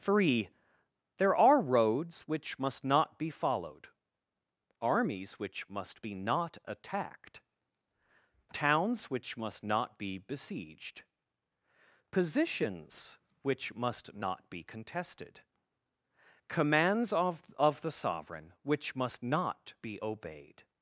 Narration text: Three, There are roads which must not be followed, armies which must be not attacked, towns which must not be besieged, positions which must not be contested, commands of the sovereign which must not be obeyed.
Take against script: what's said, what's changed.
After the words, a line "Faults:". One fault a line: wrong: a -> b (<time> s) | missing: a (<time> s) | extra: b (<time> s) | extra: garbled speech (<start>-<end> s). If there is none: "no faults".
Three, There are roads which must not be followed, armies which must be not attacked, towns which must not be besieged, positions which must not be contested, commands of of the sovereign which must not be obeyed.
Faults:
extra: of (17.6 s)